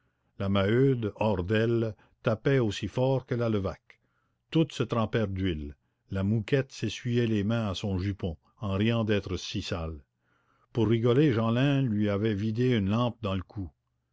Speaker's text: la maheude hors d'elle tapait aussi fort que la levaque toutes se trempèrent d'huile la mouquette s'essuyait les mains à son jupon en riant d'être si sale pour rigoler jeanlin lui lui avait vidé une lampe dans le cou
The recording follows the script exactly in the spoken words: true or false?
false